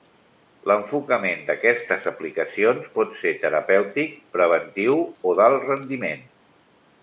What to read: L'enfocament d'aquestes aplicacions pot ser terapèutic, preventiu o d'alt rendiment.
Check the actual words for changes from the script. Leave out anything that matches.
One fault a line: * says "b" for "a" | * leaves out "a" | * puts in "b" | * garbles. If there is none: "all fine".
all fine